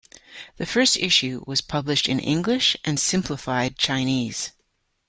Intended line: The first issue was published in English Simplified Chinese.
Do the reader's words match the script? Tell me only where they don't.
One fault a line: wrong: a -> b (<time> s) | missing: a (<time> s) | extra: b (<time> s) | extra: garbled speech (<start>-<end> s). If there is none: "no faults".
extra: and (2.9 s)